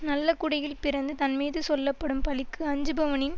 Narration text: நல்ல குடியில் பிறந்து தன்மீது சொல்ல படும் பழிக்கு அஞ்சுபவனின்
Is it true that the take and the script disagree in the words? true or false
false